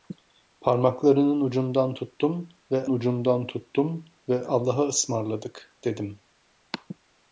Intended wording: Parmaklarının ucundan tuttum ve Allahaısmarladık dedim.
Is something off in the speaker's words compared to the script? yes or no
yes